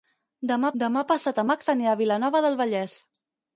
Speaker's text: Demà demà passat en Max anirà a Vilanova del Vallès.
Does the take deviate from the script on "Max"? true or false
false